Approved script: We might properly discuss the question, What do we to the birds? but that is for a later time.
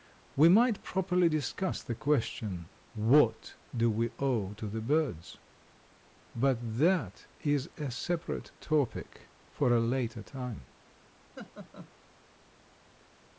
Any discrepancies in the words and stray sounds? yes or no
yes